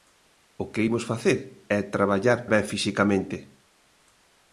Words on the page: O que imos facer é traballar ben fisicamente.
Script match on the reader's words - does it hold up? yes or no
yes